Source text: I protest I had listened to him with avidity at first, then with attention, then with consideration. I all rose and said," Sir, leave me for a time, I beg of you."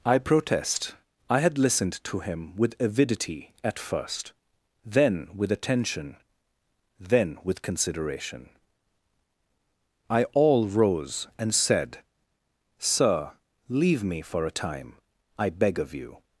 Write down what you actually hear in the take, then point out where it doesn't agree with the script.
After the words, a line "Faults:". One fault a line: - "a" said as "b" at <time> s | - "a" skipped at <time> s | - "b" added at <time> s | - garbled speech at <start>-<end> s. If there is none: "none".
I protest I had listened to him with avidity at first, then with attention, then with consideration. I all rose and said," Sir, leave me for a time, I beg of you."
Faults:
none